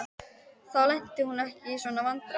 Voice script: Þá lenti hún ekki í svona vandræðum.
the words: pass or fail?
pass